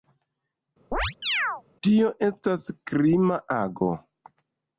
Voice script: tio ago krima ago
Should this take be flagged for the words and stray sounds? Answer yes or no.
yes